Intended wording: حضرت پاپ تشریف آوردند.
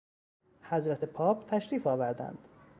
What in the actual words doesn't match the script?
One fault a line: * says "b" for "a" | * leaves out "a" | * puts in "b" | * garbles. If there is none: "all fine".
all fine